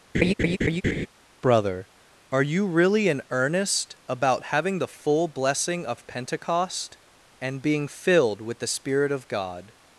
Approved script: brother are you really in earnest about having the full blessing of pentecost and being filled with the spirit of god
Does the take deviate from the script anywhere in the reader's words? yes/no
no